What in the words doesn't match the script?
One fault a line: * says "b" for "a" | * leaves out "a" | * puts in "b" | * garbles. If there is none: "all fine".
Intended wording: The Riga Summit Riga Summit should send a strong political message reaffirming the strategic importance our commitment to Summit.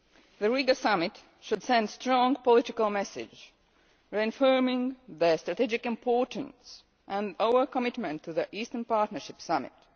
* leaves out "Riga Summit"
* puts in "and"
* puts in "the Eastern Partnership"